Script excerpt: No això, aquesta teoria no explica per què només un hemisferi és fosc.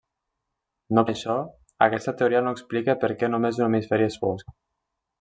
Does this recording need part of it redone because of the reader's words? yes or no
no